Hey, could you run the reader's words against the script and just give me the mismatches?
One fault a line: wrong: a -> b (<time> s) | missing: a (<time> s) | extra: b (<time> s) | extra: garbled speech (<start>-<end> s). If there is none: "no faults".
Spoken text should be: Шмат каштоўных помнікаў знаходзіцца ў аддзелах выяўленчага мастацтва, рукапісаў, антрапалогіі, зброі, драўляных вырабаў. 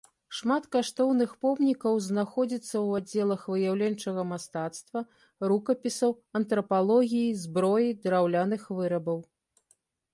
no faults